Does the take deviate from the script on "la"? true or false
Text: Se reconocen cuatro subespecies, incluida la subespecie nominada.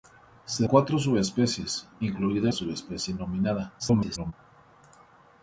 true